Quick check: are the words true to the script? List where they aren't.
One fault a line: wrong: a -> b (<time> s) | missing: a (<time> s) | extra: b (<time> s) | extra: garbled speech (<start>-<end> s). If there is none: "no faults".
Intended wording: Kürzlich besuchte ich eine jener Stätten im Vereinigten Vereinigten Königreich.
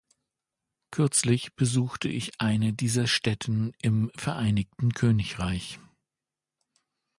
wrong: jener -> dieser (2.7 s)
missing: Vereinigten (4.9 s)